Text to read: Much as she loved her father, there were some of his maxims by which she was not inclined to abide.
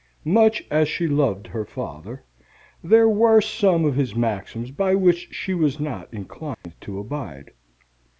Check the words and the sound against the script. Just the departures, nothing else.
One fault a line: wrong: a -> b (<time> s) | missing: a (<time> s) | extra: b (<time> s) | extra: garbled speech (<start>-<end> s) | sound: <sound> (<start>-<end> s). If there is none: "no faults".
sound: dropout (6.5-6.6 s)